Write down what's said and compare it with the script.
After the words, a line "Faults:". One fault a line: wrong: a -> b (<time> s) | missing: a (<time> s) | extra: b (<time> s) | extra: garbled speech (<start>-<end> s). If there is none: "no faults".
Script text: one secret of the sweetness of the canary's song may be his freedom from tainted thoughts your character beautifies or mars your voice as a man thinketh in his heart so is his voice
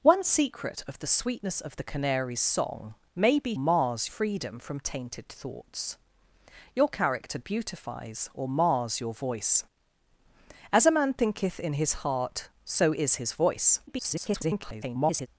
one secret of the sweetness of the canary's song may be mars freedom from tainted thoughts your character beautifies or mars your voice as a man thinketh in his heart so is his voice [garbled]
Faults:
wrong: his -> mars (3.6 s)
extra: garbled speech (13.9-15.3 s)